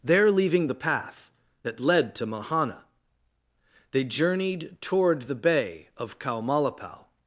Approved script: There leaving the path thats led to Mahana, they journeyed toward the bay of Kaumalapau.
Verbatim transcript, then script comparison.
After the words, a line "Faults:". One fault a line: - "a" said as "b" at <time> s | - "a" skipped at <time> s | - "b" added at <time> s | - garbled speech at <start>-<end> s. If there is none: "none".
There leaving the path that led to Mahana, they journeyed toward the bay of Kaumalapau.
Faults:
- "thats" said as "that" at 1.6 s